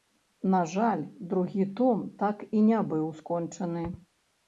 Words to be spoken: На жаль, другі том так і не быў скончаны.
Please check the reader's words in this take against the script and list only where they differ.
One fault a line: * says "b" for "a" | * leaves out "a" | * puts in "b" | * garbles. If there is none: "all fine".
all fine